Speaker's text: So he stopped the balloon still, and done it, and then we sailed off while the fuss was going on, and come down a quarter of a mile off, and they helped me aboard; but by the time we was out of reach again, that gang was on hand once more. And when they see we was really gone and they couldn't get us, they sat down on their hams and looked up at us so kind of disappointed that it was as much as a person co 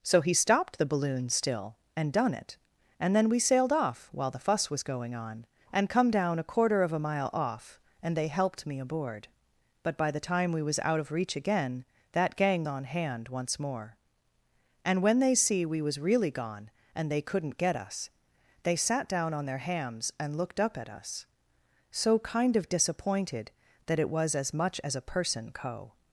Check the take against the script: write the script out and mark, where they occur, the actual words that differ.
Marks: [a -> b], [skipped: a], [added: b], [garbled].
So he stopped the balloon still, and done it, and then we sailed off while the fuss was going on, and come down a quarter of a mile off, and they helped me aboard; but by the time we was out of reach again, that gang [skipped: was] on hand once more. And when they see we was really gone and they couldn't get us, they sat down on their hams and looked up at us so kind of disappointed that it was as much as a person co